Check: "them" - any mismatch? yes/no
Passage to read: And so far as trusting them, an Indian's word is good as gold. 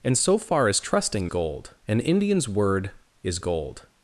yes